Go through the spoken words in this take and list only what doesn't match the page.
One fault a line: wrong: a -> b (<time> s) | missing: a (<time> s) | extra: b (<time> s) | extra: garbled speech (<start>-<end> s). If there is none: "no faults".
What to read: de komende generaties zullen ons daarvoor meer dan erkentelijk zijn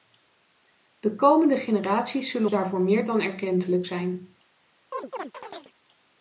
missing: ons (2.5 s)